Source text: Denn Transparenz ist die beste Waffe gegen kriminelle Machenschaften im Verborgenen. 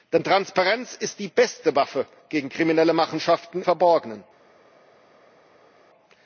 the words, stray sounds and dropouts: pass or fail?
fail